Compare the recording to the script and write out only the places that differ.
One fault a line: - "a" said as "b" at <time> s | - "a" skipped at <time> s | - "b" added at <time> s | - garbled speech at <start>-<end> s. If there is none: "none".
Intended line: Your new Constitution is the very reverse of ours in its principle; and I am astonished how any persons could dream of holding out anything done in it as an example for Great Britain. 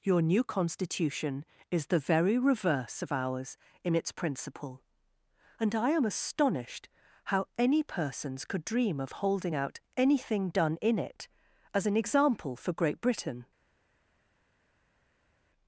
none